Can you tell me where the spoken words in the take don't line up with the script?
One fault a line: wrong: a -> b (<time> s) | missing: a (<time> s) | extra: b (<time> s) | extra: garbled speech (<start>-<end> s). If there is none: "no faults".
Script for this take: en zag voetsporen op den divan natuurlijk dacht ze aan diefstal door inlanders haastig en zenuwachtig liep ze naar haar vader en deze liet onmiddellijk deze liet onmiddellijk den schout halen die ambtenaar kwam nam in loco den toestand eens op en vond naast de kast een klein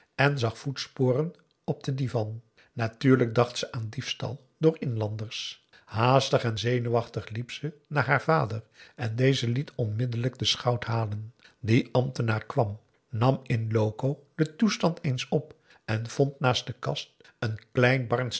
missing: deze liet onmiddellijk (10.4 s)